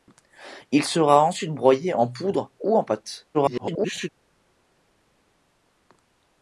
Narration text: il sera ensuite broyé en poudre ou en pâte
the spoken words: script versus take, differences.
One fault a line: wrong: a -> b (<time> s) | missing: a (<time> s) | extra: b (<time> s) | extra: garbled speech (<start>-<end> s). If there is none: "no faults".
extra: garbled speech (3.3-4.1 s)